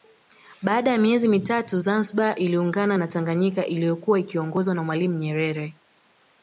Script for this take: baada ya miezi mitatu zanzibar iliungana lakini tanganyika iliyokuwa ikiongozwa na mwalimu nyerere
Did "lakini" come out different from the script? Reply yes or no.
yes